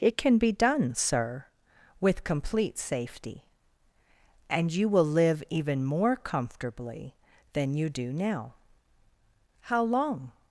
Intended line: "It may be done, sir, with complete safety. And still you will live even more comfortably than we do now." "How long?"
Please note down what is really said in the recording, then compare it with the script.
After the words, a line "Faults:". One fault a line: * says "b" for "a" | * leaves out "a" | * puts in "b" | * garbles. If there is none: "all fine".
"It can be done, sir, with complete safety. And you will live even more comfortably than you do now." "How long?"
Faults:
* says "can" for "may"
* leaves out "still"
* says "you" for "we"